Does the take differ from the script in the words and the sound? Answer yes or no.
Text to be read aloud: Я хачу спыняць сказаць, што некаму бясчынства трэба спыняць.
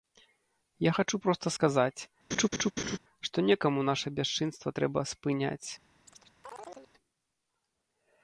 yes